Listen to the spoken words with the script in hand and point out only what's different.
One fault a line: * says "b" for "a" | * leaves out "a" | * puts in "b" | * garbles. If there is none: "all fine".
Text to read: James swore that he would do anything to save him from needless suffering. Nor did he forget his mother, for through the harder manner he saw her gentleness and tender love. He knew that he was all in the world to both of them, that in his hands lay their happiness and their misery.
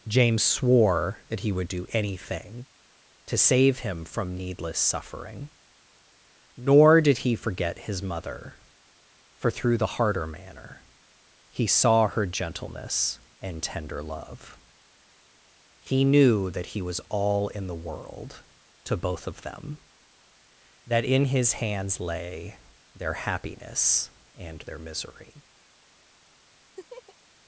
all fine